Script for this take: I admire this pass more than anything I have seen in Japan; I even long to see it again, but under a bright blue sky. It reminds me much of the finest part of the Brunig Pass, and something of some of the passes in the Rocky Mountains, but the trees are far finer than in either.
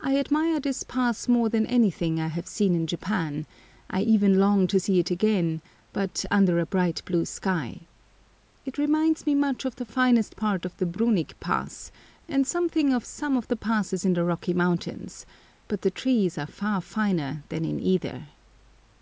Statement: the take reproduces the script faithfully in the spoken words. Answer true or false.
true